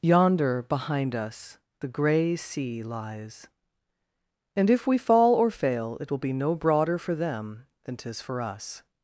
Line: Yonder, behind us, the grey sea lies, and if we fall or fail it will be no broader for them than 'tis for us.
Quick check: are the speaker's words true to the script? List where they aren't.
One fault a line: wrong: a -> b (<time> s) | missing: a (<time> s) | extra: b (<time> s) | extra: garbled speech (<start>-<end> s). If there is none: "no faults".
no faults